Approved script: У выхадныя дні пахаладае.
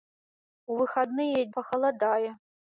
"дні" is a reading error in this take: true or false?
true